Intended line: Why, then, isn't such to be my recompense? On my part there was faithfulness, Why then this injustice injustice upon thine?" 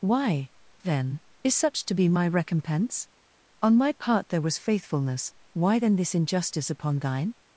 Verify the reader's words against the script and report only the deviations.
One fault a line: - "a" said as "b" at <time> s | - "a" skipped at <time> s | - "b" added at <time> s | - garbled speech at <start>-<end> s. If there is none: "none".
- "isn't" said as "is" at 1.4 s
- "injustice" skipped at 6.7 s